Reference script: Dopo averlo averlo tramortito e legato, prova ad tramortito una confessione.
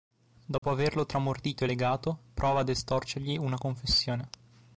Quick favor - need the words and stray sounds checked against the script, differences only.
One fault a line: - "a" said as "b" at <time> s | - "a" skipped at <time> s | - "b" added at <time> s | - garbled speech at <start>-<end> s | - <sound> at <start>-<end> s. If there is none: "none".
- dropout at 0.6-0.6 s
- "averlo" skipped at 1.1 s
- "tramortito" said as "estorcergli" at 2.7 s